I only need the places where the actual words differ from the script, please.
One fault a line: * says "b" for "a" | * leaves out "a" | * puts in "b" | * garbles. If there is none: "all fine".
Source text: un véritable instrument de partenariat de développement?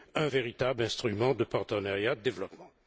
all fine